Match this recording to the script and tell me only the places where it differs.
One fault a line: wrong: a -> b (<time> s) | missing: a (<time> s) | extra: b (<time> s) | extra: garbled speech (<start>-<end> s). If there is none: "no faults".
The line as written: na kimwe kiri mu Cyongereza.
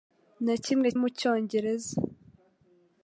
missing: kiri (0.9 s)